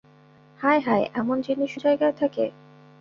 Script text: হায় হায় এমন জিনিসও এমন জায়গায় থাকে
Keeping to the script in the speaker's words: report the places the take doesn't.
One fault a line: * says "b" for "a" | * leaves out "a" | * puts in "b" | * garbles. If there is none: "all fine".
* leaves out "এমন"